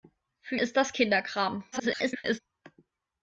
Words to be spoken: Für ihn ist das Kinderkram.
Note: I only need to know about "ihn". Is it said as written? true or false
false